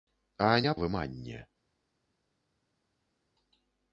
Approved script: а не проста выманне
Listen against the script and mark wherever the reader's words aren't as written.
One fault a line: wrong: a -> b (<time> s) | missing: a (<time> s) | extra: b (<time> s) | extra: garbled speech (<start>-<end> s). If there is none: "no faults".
missing: проста (0.7 s)